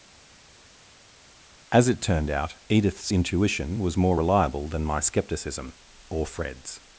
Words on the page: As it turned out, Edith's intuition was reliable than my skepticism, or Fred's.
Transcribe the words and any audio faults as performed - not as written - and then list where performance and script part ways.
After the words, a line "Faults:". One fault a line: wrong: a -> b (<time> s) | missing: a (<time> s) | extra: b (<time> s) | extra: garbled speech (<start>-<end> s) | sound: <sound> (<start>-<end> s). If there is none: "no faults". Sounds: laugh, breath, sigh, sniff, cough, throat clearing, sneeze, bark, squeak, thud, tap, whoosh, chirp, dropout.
As it turned out, Edith's intuition was more reliable than my skepticism, or Fred's.
Faults:
extra: more (4.0 s)